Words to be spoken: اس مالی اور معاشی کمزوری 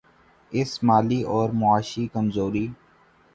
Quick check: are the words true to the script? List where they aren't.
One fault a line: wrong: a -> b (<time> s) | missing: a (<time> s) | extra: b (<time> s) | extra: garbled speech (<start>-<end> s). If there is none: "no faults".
no faults